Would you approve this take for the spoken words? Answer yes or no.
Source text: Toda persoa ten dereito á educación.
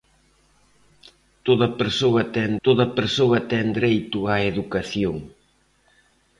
no